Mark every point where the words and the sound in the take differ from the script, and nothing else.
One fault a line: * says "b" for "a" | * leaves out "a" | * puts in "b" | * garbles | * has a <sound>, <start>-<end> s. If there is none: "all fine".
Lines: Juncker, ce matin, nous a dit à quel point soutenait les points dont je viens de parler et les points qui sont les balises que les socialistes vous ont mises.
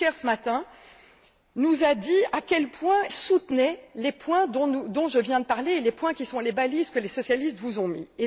all fine